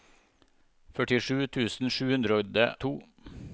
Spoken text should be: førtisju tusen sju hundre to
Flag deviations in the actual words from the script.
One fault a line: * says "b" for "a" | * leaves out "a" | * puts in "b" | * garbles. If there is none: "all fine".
all fine